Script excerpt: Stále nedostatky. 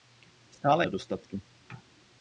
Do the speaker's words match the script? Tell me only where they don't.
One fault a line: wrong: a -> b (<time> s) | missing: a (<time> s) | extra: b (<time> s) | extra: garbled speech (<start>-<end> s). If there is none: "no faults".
no faults